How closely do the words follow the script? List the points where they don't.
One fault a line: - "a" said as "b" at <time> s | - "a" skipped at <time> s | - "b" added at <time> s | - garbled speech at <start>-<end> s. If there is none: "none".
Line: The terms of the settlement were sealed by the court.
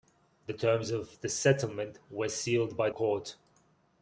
- "the" skipped at 2.9 s